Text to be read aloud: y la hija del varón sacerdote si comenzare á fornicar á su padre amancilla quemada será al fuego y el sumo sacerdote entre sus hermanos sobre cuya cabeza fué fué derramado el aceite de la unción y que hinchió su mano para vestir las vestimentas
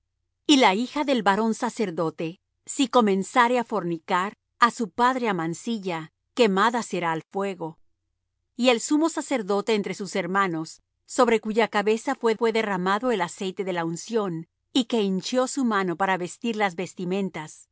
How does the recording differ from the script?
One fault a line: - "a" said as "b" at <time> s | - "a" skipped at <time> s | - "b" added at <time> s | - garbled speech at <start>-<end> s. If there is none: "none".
none